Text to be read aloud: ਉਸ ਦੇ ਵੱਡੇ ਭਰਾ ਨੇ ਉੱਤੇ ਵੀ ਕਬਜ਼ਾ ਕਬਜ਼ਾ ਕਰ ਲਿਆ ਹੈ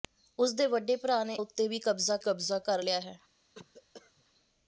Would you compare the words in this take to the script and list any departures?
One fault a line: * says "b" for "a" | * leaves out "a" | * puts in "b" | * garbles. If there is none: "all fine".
all fine